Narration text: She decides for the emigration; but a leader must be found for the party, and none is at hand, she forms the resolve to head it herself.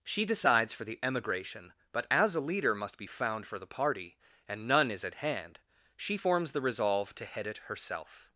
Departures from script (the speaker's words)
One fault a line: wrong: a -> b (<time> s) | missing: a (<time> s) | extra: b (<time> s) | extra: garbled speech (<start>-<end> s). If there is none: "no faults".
extra: as (2.1 s)